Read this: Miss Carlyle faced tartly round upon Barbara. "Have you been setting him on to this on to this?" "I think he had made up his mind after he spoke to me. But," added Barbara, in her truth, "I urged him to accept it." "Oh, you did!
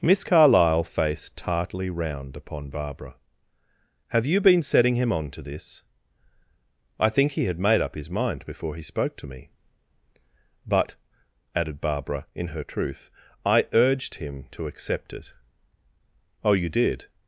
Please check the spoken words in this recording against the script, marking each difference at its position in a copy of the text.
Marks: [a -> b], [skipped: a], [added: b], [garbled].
Miss Carlyle faced tartly round upon Barbara. "Have you been setting him on to this [skipped: on to this?"] "I think he had made up his mind [after -> before] he spoke to me. But," added Barbara, in her truth, "I urged him to accept it." "Oh, you did!